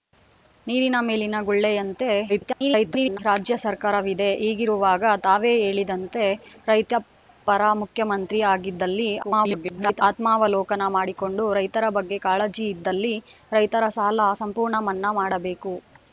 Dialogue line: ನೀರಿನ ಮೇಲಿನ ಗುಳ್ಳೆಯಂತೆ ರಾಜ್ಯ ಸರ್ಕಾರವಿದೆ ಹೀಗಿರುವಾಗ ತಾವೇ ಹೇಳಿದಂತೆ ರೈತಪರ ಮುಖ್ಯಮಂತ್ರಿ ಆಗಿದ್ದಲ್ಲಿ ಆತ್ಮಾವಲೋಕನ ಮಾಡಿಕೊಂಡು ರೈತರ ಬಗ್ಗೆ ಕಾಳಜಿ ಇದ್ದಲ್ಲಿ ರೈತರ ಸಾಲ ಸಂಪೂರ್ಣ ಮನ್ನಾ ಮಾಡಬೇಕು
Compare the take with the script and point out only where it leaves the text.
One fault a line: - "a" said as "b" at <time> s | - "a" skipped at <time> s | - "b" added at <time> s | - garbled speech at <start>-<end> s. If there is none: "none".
- garbled speech at 2.3-3.2 s
- garbled speech at 9.2-10.0 s